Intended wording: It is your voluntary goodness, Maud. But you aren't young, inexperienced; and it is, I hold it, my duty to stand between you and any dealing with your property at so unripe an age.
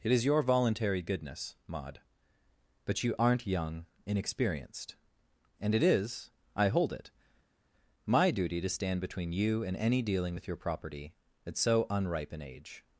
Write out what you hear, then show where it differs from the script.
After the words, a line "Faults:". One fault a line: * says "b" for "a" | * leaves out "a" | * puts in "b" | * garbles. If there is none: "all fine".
It is your voluntary goodness, Maud. But you aren't young, inexperienced; and it is, I hold it, my duty to stand between you and any dealing with your property at so unripe an age.
Faults:
all fine